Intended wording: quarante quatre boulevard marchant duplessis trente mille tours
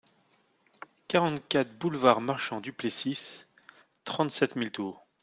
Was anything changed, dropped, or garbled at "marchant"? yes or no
no